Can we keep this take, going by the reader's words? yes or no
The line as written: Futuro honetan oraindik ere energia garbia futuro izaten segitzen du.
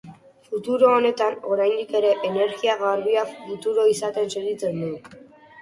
yes